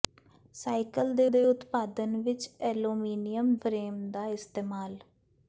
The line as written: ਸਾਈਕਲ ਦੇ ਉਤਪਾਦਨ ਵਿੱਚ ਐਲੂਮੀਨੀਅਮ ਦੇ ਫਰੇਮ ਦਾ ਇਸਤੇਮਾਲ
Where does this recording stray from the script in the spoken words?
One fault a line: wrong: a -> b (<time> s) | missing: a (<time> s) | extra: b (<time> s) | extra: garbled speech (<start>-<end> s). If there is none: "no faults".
extra: ਦੇ (1.3 s)
missing: ਦੇ (3.5 s)